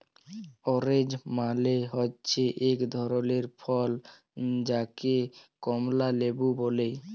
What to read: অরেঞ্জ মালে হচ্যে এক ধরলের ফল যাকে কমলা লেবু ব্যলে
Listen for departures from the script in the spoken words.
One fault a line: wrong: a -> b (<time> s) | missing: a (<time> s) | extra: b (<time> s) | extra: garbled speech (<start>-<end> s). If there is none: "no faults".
no faults